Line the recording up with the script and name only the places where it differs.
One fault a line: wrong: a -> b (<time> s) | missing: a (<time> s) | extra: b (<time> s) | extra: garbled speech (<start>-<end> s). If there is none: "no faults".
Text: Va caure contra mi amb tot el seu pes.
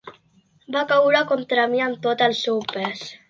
no faults